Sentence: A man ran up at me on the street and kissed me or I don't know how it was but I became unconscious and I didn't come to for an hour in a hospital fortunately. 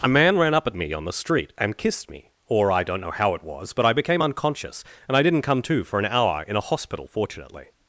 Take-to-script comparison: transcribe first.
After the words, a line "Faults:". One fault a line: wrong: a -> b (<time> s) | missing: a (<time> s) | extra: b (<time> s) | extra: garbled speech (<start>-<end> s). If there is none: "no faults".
A man ran up at me on the street and kissed me or I don't know how it was but I became unconscious and I didn't come to for an hour in a hospital fortunately.
Faults:
no faults